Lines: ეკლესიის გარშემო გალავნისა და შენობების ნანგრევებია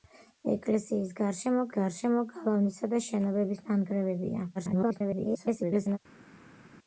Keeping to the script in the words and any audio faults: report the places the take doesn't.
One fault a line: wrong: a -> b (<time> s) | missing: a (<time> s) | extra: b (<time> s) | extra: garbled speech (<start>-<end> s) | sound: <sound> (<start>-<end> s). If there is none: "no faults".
extra: გარშემო (1.8 s)
extra: garbled speech (4.5-6.0 s)